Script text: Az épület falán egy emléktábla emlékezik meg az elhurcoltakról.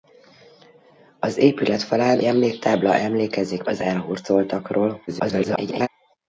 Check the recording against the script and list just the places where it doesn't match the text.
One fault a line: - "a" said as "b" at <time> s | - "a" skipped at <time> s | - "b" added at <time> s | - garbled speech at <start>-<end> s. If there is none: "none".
- "egy" skipped at 2.2 s
- "meg" skipped at 3.6 s
- garbled speech at 5.1-5.9 s